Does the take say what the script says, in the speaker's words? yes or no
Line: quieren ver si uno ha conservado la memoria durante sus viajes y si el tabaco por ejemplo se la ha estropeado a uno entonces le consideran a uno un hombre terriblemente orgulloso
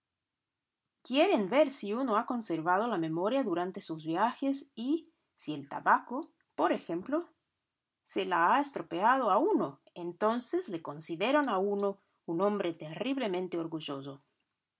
yes